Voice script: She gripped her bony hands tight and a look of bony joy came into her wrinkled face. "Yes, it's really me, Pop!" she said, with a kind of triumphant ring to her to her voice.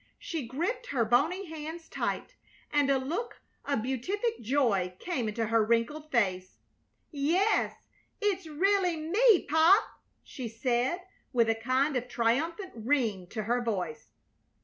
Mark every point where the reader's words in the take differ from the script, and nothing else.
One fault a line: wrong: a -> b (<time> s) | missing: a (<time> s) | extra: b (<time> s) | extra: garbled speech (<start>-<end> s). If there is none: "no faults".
wrong: bony -> beatific (3.8 s)
missing: to her (13.6 s)